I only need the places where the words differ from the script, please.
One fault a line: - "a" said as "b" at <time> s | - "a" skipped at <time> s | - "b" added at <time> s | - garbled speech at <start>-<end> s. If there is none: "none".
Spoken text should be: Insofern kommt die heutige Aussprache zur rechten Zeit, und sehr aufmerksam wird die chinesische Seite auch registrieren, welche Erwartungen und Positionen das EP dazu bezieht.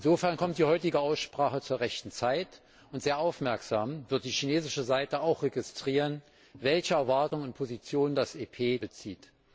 - "dazu" skipped at 8.8 s